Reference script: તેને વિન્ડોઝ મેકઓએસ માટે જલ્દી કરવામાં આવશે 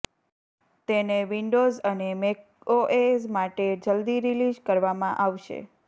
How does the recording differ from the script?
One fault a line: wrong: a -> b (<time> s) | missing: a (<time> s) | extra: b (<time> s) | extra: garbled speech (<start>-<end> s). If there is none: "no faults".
extra: અને (1.8 s)
extra: રિલીઝ (4.3 s)